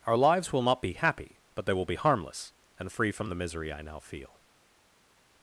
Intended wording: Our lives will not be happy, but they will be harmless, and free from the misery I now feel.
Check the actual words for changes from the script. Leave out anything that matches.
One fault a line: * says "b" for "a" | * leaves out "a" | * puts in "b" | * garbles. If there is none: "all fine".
all fine